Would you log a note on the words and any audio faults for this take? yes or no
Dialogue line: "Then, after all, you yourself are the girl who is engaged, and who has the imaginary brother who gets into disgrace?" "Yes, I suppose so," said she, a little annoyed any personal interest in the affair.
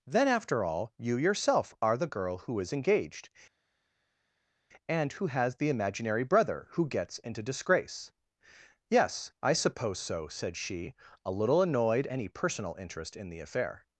no